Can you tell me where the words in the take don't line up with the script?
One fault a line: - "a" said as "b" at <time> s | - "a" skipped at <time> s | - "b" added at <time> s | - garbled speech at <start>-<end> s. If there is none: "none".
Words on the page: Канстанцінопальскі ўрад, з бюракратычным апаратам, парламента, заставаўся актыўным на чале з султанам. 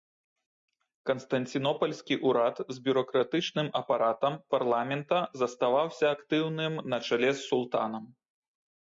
none